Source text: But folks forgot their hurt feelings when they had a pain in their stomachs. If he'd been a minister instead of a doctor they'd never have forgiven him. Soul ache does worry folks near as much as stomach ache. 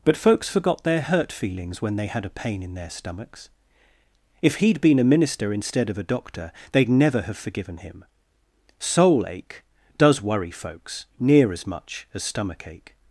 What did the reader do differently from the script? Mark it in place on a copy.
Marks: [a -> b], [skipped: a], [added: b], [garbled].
But folks forgot their hurt feelings when they had a pain in their stomachs. If he'd been a minister instead of a doctor they'd never have forgiven him. Soul ache does worry folks near as much as stomach ache.